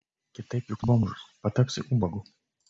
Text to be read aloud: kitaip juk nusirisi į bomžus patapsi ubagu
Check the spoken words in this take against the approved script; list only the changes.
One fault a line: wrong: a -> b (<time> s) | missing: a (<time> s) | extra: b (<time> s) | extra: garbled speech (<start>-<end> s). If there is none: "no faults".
missing: nusirisi (0.8 s)